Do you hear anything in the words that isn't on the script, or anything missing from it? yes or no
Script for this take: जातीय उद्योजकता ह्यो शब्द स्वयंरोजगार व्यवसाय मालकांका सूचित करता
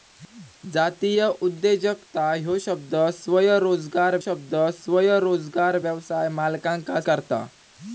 yes